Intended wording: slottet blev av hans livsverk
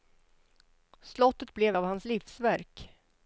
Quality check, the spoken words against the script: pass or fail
pass